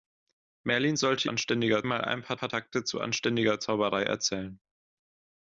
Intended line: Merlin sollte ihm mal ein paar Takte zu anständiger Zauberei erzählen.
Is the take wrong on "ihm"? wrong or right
wrong